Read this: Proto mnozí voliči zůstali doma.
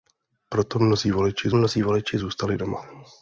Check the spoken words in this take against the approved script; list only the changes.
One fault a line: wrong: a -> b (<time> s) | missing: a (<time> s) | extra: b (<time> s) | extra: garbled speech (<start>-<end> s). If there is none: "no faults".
extra: mnozí voliči (1.5 s)